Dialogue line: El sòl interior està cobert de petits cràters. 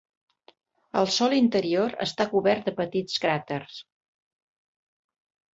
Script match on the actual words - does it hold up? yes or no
yes